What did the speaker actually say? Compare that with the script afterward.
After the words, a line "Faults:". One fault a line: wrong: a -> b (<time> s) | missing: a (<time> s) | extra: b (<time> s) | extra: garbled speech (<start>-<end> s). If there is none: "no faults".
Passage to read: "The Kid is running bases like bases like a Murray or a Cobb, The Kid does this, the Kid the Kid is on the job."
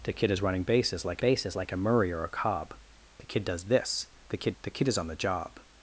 "The Kid is running bases like bases like a Murray or a Cobb, The Kid does this, the Kid the Kid is on the job."
Faults:
no faults